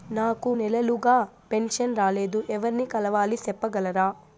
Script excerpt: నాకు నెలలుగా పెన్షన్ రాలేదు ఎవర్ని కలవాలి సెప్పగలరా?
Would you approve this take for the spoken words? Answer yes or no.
yes